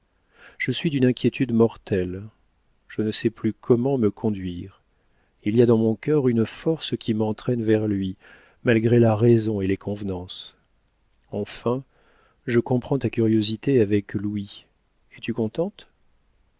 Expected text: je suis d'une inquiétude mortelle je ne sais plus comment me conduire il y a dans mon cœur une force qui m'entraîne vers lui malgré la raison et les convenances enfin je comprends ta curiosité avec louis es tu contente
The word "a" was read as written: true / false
true